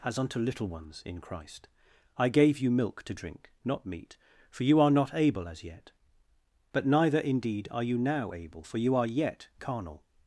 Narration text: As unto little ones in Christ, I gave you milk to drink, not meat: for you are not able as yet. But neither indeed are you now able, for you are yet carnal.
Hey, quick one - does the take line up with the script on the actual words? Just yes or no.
yes